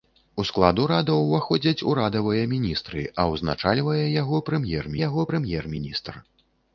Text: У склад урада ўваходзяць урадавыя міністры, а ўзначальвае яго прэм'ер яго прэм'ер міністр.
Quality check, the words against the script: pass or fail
pass